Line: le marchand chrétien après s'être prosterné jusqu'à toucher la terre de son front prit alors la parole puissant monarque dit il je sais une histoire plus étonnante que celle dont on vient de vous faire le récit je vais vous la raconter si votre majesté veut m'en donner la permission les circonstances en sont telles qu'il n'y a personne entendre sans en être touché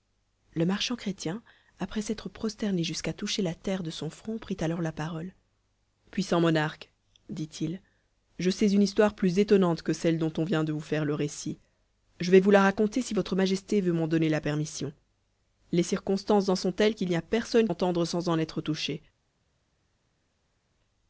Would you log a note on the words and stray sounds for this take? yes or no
no